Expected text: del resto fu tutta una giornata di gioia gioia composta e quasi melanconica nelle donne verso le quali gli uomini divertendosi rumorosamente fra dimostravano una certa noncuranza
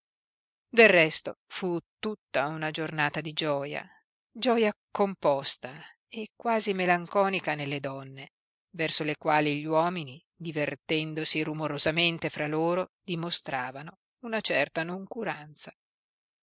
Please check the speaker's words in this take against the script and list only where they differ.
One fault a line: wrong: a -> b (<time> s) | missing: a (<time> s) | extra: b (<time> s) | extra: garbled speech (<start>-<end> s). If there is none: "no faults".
extra: loro (12.5 s)